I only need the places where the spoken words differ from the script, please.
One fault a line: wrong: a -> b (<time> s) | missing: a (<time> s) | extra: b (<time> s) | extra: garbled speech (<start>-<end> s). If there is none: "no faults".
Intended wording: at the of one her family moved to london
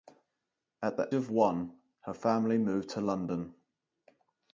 no faults